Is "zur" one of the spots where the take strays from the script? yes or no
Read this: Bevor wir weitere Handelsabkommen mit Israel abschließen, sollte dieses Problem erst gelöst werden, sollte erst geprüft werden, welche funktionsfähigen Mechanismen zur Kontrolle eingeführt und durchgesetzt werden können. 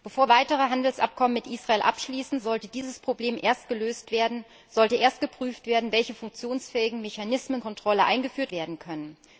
yes